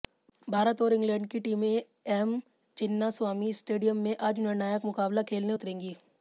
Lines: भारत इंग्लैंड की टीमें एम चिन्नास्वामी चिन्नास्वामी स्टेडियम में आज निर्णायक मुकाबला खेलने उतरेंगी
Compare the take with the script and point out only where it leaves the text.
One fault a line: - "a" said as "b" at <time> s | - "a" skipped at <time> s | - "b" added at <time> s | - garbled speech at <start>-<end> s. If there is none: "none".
- "और" added at 0.8 s
- "चिन्नास्वामी" skipped at 3.5 s